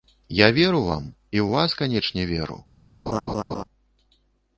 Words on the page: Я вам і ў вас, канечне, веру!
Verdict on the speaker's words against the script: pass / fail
fail